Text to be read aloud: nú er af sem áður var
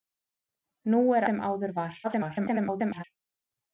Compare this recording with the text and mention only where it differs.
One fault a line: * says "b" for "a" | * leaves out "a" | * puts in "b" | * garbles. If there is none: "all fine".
* leaves out "af"
* garbles